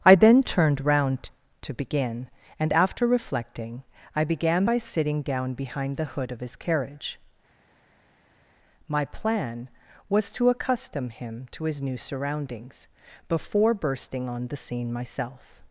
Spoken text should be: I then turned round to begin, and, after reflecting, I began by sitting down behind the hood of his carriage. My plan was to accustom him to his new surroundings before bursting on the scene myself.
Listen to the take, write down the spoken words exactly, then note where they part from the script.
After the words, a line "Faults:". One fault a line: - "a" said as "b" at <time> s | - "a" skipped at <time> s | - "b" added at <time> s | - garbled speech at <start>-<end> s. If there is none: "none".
I then turned round to begin, and, after reflecting, I began by sitting down behind the hood of his carriage. My plan was to accustom him to his new surroundings before bursting on the scene myself.
Faults:
none